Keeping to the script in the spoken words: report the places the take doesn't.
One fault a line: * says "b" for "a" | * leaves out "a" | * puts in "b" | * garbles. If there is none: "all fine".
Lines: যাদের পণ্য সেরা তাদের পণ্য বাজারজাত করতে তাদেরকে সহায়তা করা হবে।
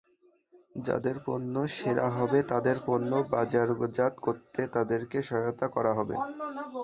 * puts in "হবে"